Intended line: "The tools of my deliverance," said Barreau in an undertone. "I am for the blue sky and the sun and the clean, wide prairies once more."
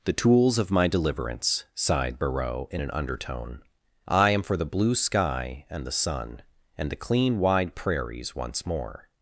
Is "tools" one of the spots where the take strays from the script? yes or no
no